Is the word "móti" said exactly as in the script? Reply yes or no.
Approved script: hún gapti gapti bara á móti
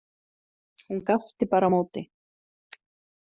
yes